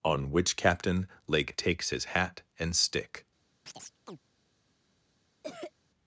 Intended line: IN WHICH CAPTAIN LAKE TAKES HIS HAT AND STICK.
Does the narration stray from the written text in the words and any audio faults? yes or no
yes